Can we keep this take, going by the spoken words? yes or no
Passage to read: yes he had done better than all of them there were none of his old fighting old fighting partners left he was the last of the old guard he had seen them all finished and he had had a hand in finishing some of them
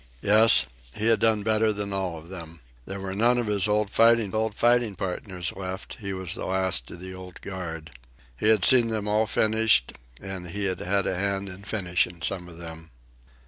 yes